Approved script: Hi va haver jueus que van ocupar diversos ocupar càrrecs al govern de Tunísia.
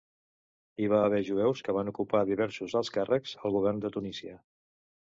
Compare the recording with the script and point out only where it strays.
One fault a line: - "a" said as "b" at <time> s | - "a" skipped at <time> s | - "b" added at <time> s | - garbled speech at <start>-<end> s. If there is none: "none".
- "ocupar" said as "alts" at 2.8 s